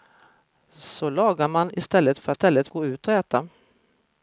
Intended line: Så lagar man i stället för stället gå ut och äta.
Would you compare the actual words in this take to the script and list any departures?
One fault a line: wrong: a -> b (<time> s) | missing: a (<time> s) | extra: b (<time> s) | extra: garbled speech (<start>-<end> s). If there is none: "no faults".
no faults